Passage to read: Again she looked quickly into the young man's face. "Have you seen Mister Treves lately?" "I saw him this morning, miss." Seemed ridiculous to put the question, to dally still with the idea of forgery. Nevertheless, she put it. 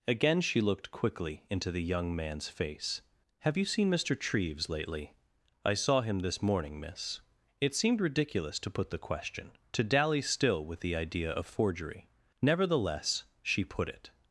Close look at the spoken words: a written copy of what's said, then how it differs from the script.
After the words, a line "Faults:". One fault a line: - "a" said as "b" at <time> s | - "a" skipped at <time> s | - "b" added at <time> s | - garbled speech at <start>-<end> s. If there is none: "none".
Again she looked quickly into the young man's face. "Have you seen Mister Treves lately?" "I saw him this morning, miss." It seemed ridiculous to put the question, to dally still with the idea of forgery. Nevertheless, she put it.
Faults:
- "It" added at 7.6 s